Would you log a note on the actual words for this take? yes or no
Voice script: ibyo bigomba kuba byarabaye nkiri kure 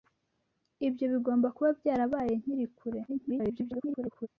yes